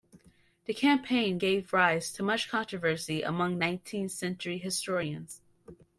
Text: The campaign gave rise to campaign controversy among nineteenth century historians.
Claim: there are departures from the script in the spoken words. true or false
true